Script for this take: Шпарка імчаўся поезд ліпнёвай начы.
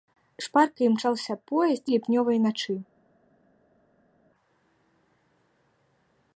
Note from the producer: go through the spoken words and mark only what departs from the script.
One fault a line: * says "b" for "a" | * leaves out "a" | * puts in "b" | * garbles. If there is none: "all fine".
all fine